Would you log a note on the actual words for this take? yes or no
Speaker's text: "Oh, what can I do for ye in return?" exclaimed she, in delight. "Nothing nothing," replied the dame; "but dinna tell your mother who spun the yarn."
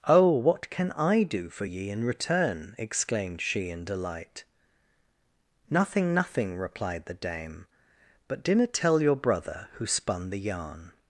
yes